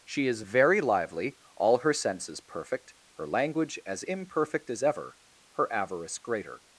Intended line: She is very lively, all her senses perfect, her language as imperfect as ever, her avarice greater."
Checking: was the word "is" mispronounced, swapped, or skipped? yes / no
no